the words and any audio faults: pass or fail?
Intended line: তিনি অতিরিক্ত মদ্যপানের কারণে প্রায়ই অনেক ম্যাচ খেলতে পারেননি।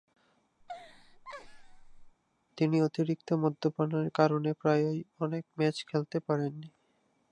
fail